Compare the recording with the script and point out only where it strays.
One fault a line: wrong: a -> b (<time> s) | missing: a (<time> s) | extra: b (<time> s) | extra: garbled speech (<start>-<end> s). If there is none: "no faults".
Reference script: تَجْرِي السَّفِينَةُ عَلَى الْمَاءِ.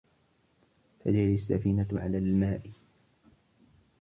no faults